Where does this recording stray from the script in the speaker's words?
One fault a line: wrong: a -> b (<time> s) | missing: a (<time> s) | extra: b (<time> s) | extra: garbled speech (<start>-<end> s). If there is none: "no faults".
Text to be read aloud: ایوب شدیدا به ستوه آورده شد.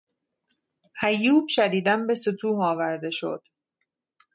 no faults